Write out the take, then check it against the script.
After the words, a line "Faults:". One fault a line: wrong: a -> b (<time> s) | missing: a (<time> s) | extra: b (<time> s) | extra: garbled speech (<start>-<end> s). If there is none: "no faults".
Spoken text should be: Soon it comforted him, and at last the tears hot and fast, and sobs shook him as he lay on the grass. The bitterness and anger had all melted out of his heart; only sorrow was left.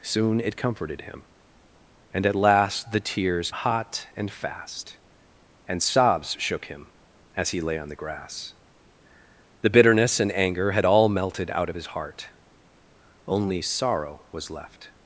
Soon it comforted him, and at last the tears hot and fast, and sobs shook him as he lay on the grass. The bitterness and anger had all melted out of his heart; only sorrow was left.
Faults:
no faults